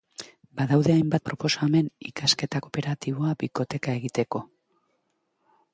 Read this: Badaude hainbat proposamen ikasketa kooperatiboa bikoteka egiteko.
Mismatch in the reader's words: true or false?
false